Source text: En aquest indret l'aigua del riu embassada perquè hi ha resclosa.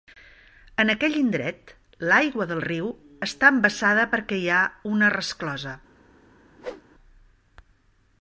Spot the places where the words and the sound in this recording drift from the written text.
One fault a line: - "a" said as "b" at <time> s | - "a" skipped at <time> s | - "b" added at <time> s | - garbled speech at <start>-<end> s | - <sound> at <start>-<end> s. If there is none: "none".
- "aquest" said as "aquell" at 0.9 s
- "està" added at 3.3 s
- "una" added at 4.9 s
- whoosh at 6.6-6.8 s